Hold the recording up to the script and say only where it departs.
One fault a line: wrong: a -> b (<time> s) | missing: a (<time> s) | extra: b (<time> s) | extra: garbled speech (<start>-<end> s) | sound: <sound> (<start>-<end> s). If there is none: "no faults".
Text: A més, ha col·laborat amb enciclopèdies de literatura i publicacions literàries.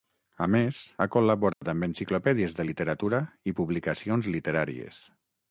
sound: dropout (1.5-1.6 s)